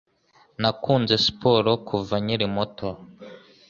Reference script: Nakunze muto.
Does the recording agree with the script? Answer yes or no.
no